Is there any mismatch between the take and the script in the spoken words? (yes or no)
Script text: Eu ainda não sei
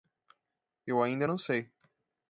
no